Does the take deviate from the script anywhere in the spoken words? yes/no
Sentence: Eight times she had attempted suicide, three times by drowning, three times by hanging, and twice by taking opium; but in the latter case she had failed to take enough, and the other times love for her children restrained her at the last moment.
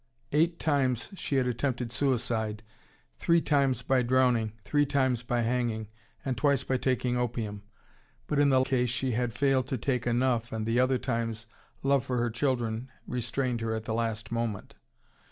yes